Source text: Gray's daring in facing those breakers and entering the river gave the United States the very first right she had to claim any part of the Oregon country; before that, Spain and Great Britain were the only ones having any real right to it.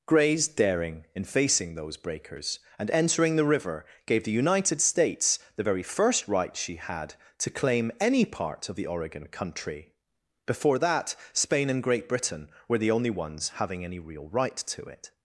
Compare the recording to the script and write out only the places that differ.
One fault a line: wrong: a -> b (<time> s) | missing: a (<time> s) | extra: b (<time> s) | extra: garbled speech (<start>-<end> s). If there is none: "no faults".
no faults